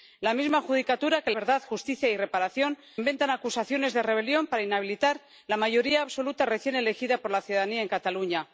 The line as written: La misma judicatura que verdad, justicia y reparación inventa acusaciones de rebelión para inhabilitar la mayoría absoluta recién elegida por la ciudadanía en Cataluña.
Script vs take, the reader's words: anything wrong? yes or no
no